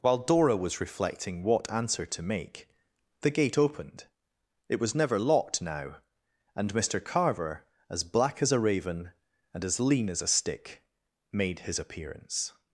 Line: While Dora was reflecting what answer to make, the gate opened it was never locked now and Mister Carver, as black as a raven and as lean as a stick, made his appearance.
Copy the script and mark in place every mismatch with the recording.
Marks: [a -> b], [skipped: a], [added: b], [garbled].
While Dora was reflecting what answer to make, the gate opened it was never locked now and Mister Carver, as black as a raven and as lean as a stick, made his appearance.